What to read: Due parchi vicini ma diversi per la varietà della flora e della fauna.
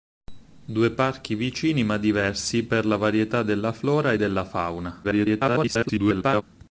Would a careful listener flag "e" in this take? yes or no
no